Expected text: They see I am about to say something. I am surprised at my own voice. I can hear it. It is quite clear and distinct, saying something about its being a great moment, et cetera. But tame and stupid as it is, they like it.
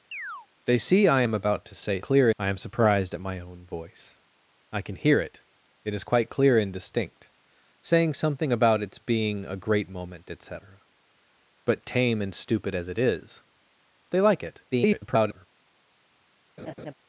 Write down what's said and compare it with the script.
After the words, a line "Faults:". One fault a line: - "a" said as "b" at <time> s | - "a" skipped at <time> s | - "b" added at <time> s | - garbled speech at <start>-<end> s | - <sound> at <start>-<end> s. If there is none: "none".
They see I am about to say clear. I am surprised at my own voice. I can hear it. It is quite clear and distinct, saying something about its being a great moment, et cetera. But tame and stupid as it is, they like it. [garbled]
Faults:
- chirp at 0.1-0.5 s
- "something" said as "clear" at 2.0 s
- garbled speech at 14.7-15.5 s
- laugh at 16.6-16.9 s